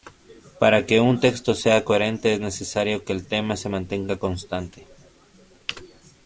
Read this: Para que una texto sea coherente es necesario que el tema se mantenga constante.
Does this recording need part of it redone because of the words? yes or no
yes